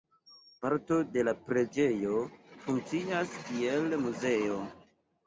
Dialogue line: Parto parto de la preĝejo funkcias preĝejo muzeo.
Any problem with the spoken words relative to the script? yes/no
yes